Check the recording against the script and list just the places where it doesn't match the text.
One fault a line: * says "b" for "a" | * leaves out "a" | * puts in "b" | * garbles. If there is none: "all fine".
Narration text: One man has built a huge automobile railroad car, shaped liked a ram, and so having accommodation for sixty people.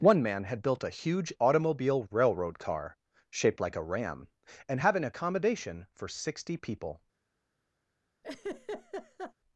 * says "had" for "has"
* says "like" for "liked"
* leaves out "so"